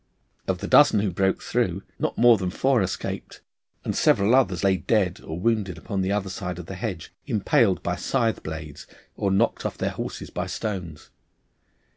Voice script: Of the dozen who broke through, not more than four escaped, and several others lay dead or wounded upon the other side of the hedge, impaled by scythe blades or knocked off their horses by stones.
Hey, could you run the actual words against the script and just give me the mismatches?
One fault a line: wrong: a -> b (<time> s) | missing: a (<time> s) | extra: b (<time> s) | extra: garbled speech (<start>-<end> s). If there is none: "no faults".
no faults